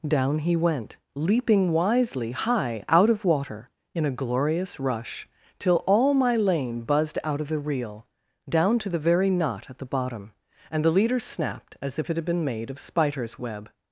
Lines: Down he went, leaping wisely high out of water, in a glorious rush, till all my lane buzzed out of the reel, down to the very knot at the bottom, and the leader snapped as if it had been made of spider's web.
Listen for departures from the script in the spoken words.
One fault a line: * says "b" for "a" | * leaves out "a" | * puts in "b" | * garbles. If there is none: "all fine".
all fine